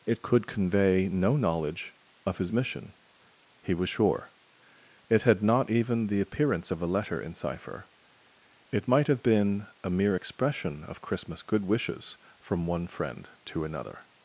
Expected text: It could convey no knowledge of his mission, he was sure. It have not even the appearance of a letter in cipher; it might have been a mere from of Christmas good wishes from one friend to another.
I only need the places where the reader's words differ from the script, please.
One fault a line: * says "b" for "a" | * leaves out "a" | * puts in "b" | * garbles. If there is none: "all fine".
* says "had" for "have"
* says "expression" for "from"